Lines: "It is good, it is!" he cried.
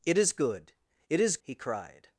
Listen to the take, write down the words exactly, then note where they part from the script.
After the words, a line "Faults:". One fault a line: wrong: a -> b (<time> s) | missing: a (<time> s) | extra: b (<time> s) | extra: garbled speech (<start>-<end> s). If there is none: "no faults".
"It is good, it is!" he cried.
Faults:
no faults